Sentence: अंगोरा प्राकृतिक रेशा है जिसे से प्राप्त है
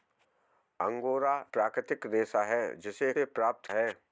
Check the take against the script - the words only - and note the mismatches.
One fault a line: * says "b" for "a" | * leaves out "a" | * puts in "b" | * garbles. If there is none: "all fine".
all fine